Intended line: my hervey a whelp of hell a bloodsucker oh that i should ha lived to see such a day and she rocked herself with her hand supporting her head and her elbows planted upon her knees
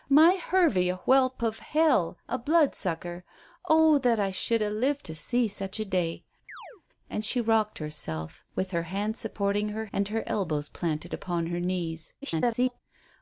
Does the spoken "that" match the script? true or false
true